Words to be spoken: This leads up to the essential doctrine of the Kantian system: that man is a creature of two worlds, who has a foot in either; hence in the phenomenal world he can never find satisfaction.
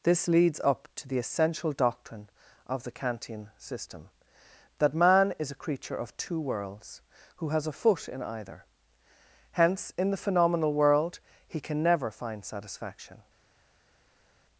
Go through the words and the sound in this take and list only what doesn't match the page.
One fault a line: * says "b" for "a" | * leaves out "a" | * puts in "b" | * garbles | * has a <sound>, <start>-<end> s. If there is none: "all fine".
all fine